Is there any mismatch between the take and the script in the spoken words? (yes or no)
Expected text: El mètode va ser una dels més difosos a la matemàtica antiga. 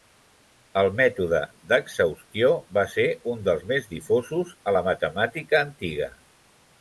yes